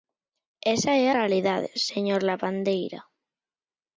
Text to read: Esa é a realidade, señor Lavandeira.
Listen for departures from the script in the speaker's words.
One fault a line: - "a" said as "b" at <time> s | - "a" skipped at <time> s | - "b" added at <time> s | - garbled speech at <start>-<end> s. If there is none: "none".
- "a" skipped at 1.1 s